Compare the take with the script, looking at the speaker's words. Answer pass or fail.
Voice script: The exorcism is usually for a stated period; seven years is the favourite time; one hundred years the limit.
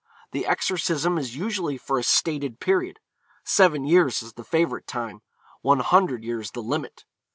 pass